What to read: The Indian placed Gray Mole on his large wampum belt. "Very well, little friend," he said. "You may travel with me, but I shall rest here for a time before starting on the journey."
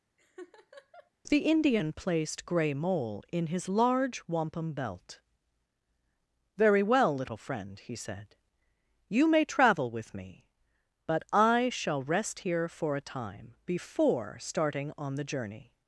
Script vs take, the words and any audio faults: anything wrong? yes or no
yes